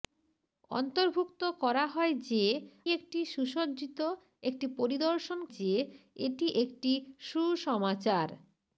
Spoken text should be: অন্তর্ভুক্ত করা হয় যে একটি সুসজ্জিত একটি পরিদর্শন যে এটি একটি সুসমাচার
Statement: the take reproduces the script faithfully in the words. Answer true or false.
true